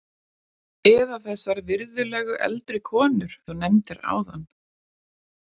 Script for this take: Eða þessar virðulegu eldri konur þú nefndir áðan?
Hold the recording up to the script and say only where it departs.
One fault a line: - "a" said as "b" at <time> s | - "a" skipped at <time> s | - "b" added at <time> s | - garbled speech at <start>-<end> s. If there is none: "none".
none